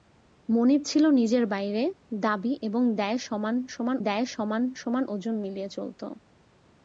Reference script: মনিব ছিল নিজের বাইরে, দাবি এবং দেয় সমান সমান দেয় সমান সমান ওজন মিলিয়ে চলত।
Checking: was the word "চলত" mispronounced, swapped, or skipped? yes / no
no